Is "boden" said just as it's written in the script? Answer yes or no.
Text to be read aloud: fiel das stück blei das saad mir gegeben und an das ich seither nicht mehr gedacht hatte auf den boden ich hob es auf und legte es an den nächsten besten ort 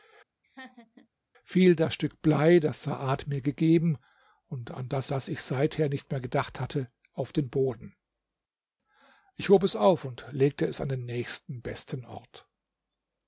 yes